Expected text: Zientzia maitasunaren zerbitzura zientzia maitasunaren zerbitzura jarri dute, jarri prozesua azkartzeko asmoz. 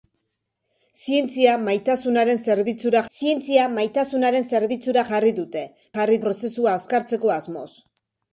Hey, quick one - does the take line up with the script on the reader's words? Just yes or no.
yes